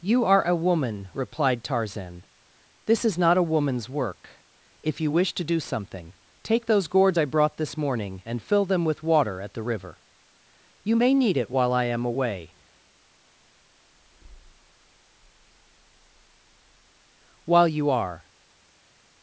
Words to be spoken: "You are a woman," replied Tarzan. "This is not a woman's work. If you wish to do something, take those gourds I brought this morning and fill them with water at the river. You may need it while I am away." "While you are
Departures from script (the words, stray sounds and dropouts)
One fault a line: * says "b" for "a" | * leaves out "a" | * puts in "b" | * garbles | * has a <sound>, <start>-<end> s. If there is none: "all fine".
all fine